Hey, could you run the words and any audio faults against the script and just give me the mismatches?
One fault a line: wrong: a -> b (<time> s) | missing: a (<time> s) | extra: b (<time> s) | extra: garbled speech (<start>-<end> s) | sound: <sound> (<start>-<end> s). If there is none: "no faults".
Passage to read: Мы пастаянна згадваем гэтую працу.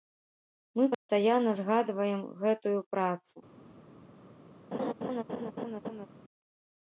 sound: dropout (0.9-1.1 s)
sound: laugh (4.7-6.1 s)